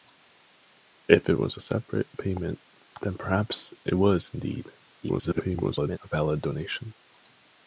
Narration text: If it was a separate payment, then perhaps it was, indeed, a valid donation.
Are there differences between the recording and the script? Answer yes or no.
yes